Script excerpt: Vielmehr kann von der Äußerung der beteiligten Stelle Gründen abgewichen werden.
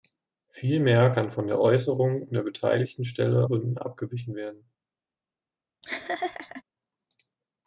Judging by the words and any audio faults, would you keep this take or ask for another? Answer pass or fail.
fail